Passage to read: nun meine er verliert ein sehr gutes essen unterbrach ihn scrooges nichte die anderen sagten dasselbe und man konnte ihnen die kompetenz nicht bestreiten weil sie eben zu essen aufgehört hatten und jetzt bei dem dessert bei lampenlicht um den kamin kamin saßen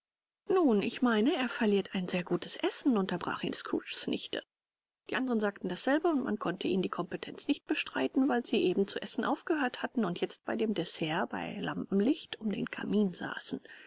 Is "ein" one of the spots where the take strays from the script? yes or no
no